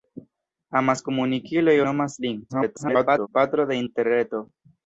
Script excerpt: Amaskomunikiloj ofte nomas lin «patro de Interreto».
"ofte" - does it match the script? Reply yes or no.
no